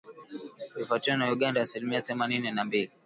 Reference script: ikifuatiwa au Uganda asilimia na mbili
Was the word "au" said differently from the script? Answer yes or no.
yes